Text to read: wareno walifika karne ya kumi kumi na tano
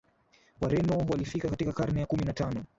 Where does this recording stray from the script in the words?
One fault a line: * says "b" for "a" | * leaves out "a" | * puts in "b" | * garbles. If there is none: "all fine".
* puts in "katika"
* leaves out "kumi"